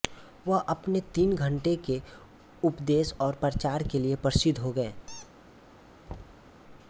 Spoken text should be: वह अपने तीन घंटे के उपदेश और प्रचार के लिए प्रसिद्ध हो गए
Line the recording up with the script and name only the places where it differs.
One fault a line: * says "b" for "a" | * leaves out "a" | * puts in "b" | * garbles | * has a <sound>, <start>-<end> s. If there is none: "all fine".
* has a squeak, 5.1-5.3 s
* has a thud, 6.1-6.5 s